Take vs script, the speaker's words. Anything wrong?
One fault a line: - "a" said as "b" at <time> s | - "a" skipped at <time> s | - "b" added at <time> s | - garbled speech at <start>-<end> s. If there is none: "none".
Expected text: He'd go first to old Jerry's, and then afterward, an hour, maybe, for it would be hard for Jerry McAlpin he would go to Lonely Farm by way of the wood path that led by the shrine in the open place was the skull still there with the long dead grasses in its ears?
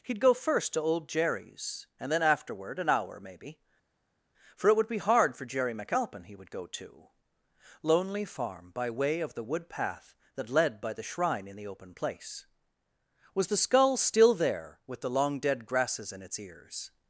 none